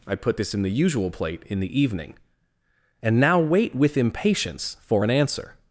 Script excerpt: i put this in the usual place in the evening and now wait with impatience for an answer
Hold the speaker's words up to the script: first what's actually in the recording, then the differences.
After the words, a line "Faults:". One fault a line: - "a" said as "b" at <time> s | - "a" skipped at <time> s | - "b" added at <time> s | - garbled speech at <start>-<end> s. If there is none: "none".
i put this in the usual plate in the evening and now wait with impatience for an answer
Faults:
- "place" said as "plate" at 1.1 s